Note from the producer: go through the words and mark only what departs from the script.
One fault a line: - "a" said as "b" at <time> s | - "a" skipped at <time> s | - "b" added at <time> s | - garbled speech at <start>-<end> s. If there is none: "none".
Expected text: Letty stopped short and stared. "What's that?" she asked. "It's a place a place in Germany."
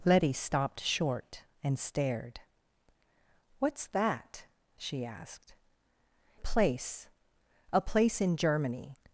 - "It's" skipped at 5.5 s